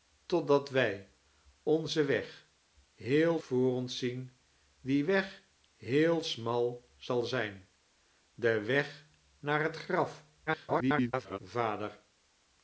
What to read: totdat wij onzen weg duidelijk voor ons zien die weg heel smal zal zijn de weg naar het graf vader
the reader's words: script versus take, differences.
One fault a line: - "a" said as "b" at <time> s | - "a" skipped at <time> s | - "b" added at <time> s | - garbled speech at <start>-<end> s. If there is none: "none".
- "duidelijk" said as "heel" at 2.9 s
- garbled speech at 10.5-11.4 s